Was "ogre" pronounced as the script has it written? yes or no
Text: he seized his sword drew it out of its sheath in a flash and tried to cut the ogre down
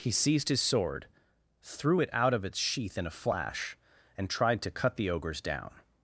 no